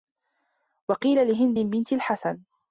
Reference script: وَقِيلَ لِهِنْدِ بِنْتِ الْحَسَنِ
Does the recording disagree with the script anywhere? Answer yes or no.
no